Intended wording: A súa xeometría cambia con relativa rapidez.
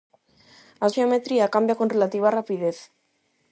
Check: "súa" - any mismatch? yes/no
yes